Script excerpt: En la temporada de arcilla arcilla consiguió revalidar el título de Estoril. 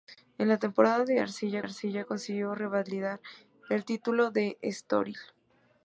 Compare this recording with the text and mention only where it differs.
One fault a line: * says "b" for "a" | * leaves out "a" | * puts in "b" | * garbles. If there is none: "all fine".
all fine